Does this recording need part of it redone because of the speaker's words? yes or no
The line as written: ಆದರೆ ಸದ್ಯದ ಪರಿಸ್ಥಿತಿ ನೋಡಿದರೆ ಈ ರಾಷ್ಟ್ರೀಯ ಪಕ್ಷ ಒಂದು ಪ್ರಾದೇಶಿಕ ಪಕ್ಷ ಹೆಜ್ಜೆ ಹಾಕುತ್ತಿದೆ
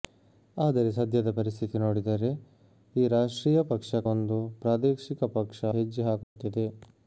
no